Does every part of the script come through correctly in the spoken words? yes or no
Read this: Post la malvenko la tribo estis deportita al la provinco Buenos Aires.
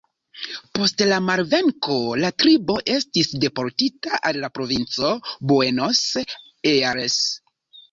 yes